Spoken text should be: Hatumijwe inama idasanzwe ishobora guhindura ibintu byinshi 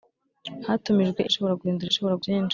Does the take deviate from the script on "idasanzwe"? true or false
true